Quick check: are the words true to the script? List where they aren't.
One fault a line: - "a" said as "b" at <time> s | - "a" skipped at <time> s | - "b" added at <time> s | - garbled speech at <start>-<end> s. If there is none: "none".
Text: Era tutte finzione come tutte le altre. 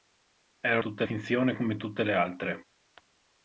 none